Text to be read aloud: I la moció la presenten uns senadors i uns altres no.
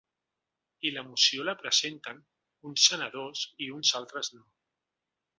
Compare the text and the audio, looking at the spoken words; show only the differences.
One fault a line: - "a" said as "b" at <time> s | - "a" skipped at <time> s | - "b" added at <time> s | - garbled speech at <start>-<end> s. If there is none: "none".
none